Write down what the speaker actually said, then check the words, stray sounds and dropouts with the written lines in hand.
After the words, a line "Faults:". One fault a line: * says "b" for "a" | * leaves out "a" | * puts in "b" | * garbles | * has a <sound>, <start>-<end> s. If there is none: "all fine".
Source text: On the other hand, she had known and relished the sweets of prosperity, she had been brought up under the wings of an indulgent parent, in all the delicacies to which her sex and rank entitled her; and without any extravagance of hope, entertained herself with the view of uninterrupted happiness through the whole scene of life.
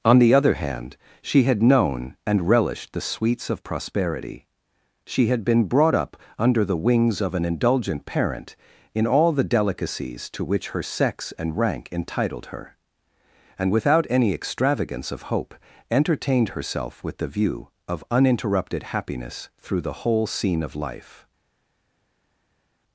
On the other hand, she had known and relished the sweets of prosperity, she had been brought up under the wings of an indulgent parent, in all the delicacies to which her sex and rank entitled her; and without any extravagance of hope, entertained herself with the view of uninterrupted happiness through the whole scene of life.
Faults:
all fine